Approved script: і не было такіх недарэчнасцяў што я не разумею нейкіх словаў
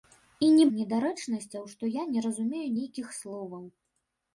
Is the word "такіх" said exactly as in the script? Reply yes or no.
no